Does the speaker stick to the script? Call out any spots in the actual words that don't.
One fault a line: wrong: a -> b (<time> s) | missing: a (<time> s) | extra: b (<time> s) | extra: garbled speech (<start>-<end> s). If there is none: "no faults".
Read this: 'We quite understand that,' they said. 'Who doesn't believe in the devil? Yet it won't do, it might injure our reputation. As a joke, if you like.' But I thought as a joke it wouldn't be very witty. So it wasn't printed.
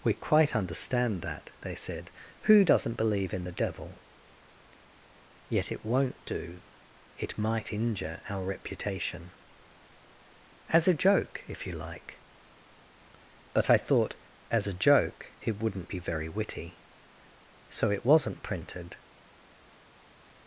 no faults